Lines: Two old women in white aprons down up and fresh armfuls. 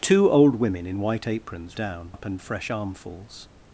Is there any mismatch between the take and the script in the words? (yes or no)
no